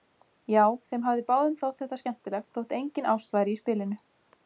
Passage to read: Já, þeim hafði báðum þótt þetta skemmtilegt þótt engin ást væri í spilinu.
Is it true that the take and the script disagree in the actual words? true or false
false